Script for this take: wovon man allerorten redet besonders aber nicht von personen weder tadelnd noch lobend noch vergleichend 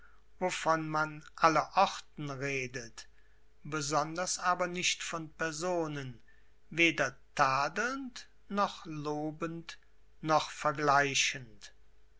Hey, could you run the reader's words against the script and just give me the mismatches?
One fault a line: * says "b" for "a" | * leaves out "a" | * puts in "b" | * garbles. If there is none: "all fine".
all fine